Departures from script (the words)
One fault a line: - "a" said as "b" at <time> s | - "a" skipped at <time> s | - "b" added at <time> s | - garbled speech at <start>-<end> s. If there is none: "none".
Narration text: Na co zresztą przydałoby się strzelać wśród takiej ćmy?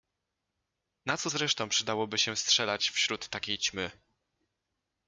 none